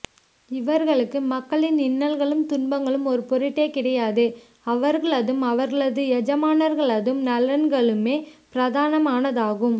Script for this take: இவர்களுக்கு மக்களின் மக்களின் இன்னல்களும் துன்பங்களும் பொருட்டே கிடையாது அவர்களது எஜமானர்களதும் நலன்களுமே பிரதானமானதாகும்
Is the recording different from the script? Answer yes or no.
yes